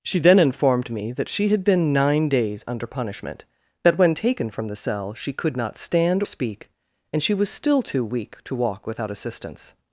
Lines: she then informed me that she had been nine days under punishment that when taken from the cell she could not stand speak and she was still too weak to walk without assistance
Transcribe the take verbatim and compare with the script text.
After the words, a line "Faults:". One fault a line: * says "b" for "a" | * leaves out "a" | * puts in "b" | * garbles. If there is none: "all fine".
she then informed me that she had been nine days under punishment that when taken from the cell she could not stand speak and she was still too weak to walk without assistance
Faults:
all fine